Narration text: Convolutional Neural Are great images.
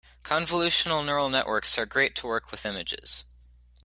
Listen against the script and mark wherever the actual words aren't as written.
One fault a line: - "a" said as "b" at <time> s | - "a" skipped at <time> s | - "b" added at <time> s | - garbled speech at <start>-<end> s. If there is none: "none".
- "Networks" added at 1.3 s
- "to work with" added at 2.1 s